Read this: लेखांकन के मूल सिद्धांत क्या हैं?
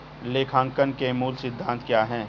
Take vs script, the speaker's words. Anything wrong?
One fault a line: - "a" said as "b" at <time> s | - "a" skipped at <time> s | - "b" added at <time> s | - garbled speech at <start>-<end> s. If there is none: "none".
none